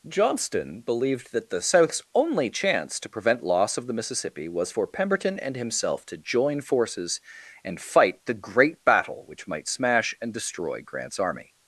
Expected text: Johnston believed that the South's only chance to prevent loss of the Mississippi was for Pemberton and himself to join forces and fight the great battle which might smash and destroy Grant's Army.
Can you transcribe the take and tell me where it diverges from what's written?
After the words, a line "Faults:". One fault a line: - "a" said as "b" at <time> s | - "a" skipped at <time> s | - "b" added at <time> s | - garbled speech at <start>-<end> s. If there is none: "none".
Johnston believed that the South's only chance to prevent loss of the Mississippi was for Pemberton and himself to join forces and fight the great battle which might smash and destroy Grant's Army.
Faults:
none